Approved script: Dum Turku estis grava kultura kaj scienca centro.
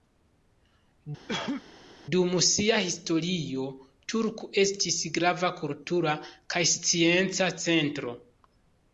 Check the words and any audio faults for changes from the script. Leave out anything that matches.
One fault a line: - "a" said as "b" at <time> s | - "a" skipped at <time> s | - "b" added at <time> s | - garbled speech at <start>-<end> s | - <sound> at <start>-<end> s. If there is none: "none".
- cough at 1.3-1.6 s
- "sia historio" added at 2.5 s